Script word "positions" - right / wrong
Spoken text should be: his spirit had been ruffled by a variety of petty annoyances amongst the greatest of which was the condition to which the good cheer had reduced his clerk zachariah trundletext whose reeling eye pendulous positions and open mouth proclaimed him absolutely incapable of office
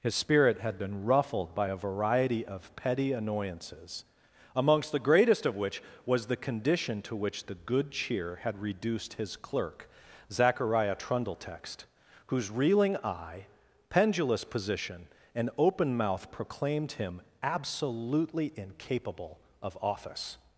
wrong